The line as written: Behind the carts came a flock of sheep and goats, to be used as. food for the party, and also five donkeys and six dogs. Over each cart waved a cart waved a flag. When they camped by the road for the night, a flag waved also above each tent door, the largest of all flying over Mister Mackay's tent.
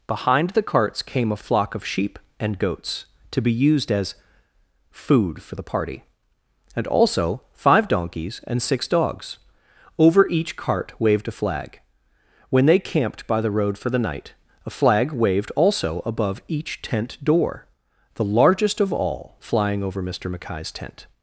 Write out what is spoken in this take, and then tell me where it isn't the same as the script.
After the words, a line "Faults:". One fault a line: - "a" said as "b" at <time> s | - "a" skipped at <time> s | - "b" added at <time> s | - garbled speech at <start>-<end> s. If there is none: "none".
Behind the carts came a flock of sheep and goats, to be used as. food for the party, and also five donkeys and six dogs. Over each cart waved a flag. When they camped by the road for the night, a flag waved also above each tent door, the largest of all flying over Mister Mackay's tent.
Faults:
- "cart waved a" skipped at 11.4 s